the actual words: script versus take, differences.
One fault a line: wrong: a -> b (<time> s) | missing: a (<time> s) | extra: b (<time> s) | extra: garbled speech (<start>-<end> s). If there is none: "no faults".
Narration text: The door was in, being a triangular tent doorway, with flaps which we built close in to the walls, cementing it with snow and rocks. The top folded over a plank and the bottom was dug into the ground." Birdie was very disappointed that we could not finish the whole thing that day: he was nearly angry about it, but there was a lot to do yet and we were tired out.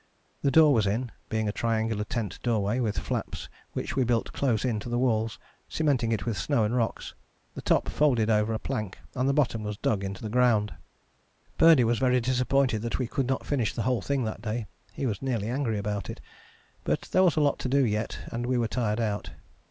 no faults